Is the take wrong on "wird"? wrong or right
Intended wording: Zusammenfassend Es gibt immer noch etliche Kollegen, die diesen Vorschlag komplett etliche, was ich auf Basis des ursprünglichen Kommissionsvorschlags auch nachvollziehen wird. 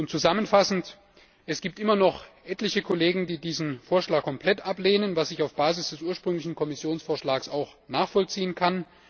wrong